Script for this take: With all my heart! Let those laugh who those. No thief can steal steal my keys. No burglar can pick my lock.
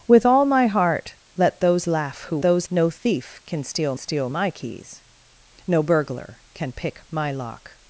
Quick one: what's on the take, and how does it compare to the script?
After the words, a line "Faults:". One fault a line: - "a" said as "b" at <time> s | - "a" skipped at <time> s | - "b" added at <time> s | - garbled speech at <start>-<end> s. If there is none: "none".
With all my heart! Let those laugh who those. No thief can steal steal my keys. No burglar can pick my lock.
Faults:
none